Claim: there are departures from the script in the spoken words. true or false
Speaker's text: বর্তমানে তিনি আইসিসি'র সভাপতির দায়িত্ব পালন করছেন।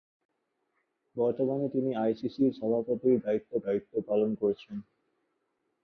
true